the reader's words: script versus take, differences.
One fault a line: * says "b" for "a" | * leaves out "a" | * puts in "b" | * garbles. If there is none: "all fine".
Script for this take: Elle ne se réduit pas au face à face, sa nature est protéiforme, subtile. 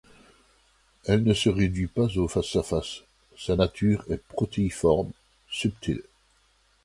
all fine